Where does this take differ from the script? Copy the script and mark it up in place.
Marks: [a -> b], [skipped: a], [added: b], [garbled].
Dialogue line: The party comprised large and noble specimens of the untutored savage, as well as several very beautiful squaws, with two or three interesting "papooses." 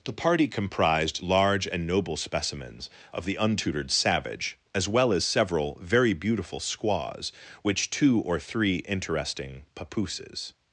The party comprised large and noble specimens of the untutored savage, as well as several very beautiful squaws, [with -> which] two or three interesting "papooses."